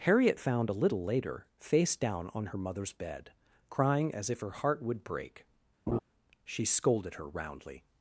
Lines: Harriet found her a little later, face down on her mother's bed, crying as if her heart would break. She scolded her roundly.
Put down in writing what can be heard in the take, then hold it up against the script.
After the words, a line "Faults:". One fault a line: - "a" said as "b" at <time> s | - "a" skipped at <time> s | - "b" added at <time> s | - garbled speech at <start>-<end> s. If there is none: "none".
Harriet found a little later, face down on her mother's bed, crying as if her heart would break. She scolded her roundly.
Faults:
- "her" skipped at 0.7 s